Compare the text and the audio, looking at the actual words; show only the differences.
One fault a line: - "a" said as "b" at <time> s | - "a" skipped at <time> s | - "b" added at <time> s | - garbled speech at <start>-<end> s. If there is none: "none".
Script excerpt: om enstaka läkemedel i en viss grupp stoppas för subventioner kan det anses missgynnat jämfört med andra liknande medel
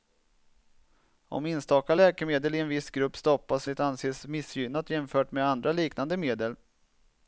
- "för subventioner kan" skipped at 3.7 s